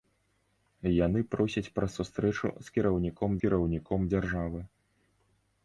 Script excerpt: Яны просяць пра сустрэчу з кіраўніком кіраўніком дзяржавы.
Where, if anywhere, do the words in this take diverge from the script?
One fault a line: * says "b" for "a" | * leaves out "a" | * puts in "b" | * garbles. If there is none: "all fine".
all fine